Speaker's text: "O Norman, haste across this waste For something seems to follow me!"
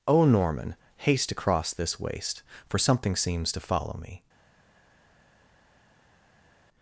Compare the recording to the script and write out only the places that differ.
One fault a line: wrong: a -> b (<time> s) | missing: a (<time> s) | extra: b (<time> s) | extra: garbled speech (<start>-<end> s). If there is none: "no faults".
no faults